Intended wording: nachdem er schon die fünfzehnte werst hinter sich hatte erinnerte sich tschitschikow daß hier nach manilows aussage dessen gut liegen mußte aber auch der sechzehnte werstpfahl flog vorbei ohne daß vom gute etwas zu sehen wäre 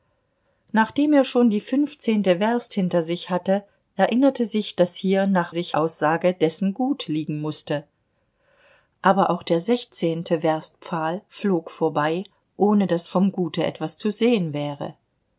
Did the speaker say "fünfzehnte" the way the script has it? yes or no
yes